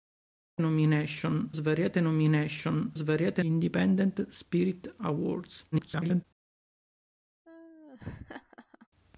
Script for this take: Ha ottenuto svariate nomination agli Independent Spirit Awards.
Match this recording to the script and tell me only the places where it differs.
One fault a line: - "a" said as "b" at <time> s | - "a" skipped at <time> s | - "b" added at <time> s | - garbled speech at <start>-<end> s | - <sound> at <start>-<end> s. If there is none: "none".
- "ottenuto" said as "nomination" at 0.6 s
- "agli" said as "svariate" at 2.9 s
- garbled speech at 5.7-6.2 s
- laugh at 7.4-8.9 s